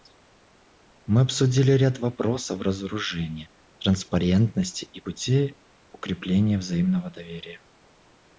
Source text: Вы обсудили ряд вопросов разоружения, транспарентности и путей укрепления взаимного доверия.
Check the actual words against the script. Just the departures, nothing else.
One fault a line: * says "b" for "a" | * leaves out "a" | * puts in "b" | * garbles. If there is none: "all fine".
* says "Мы" for "Вы"